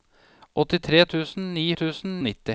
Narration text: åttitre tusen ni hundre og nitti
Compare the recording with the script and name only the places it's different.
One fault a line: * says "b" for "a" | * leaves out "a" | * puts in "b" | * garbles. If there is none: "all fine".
* says "tusen" for "hundre"